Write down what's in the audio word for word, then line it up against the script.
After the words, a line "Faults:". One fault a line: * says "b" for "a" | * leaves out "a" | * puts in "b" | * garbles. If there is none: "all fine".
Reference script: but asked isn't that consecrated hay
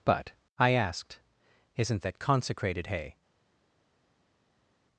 but i asked isn't that consecrated hay
Faults:
* puts in "i"